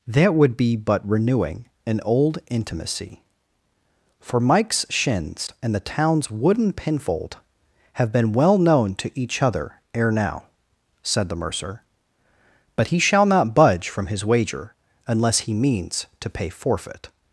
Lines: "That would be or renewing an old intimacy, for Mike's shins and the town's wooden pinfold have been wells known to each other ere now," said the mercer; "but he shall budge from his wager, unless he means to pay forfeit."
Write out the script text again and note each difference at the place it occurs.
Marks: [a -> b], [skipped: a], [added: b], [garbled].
"That would be [or -> but] renewing an old intimacy, for Mike's shins and the town's wooden pinfold have been [wells -> well] known to each other ere now," said the mercer; "but he shall [added: not] budge from his wager, unless he means to pay forfeit."